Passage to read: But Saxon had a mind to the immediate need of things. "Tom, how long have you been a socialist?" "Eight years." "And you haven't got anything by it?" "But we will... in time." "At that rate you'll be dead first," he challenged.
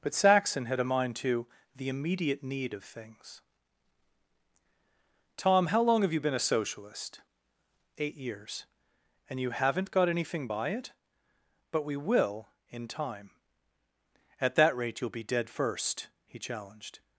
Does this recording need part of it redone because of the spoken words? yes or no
no